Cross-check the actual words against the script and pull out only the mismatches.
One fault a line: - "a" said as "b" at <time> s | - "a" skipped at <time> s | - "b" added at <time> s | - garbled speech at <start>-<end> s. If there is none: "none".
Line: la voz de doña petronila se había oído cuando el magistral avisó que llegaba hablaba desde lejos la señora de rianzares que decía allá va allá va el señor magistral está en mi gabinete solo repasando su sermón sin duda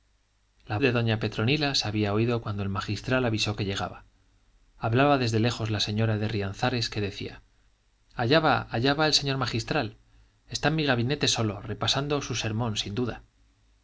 - "voz" skipped at 0.8 s